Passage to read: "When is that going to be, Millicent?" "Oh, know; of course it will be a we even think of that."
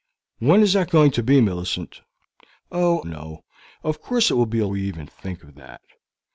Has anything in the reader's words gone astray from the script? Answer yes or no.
no